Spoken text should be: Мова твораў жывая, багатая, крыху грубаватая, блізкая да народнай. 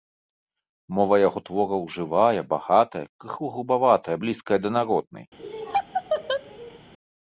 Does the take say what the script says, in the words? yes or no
no